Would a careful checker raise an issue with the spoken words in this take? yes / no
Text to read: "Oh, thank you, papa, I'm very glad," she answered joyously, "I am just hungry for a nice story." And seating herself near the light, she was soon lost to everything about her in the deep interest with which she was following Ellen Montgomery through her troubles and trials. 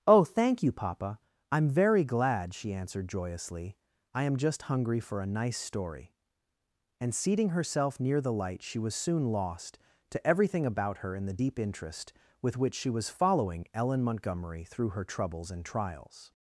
no